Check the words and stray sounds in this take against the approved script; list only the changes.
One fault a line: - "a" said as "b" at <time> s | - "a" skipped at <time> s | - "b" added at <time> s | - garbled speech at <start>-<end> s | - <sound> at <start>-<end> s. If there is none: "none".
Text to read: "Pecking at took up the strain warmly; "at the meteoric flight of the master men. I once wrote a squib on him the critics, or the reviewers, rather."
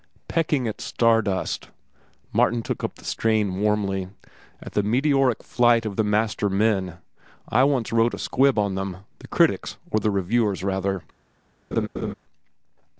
- "star dust Martin" added at 0.8 s
- "him" said as "them" at 8.7 s
- laugh at 11.7-12.1 s